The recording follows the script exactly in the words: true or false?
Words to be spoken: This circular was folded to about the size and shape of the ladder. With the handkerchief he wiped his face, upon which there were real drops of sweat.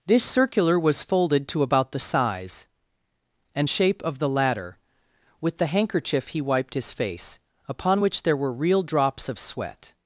true